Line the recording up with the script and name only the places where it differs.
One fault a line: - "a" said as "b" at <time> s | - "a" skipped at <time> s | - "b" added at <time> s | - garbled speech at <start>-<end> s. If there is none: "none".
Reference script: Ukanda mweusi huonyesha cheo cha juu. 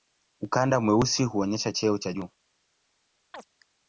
none